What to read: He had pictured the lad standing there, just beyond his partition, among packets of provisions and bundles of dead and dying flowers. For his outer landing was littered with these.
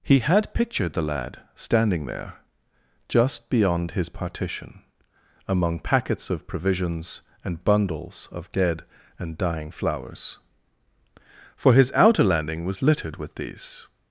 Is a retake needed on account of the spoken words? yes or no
no